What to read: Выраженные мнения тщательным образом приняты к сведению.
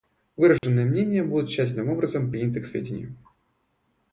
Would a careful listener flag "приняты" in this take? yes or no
no